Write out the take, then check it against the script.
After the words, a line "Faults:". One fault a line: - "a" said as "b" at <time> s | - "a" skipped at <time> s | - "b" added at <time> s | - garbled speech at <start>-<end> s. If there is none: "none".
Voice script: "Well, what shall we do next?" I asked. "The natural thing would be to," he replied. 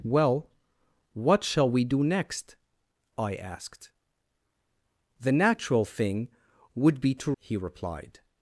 "Well, what shall we do next?" I asked. "The natural thing would be to," he replied.
Faults:
none